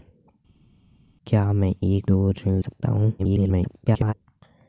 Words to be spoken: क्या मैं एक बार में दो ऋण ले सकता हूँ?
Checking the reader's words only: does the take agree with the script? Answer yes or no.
no